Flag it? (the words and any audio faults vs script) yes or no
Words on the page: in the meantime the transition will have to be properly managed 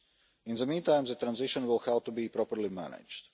no